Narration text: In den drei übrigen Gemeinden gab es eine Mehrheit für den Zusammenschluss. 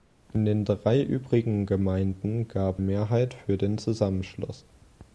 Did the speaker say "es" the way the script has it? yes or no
no